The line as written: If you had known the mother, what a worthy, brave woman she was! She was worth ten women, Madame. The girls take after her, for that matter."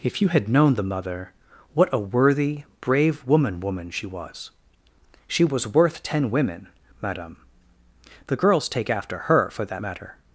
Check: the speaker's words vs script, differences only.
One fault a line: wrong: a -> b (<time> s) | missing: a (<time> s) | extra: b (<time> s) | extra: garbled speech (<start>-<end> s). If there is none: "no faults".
extra: woman (3.6 s)